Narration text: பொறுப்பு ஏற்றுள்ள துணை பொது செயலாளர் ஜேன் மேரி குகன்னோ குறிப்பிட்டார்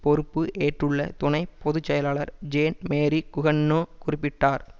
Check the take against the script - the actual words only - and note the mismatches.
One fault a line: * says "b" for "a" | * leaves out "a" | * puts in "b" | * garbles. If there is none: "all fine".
all fine